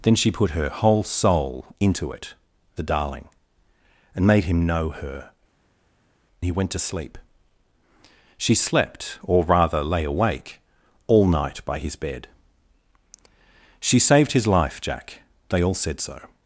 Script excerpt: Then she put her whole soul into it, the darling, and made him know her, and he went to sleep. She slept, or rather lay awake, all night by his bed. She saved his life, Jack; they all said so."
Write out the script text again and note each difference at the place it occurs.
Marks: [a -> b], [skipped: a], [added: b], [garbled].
Then she put her whole soul into it, the darling, and made him know her, [skipped: and] he went to sleep. She slept, or rather lay awake, all night by his bed. She saved his life, Jack; they all said so."